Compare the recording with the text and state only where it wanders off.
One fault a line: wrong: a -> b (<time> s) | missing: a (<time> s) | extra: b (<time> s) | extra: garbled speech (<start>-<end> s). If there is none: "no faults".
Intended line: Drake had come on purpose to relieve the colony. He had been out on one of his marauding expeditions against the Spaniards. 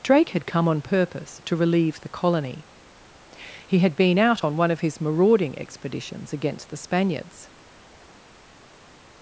no faults